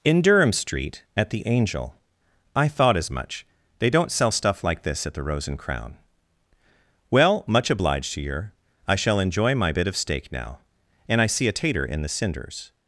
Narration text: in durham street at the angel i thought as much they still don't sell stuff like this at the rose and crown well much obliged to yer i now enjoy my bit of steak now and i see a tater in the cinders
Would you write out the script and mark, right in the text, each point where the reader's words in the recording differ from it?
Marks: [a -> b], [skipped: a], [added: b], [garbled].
in durham street at the angel i thought as much they [skipped: still] don't sell stuff like this at the rose and crown well much obliged to yer i [now -> shall] enjoy my bit of steak now and i see a tater in the cinders